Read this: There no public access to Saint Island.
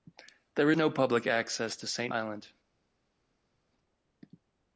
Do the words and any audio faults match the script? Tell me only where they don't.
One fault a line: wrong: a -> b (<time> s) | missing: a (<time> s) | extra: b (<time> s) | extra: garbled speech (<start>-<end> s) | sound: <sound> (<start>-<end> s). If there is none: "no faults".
no faults